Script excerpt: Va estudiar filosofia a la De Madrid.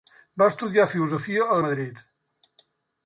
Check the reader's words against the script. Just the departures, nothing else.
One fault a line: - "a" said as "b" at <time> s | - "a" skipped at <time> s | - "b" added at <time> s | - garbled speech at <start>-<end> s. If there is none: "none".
none